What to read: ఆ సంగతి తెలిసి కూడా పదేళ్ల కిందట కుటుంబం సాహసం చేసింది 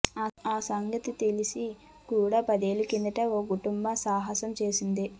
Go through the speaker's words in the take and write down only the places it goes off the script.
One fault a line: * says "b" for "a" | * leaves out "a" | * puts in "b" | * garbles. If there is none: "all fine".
* puts in "ఓ"